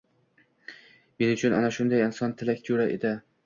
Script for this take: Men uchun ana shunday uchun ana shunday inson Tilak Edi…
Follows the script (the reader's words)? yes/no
no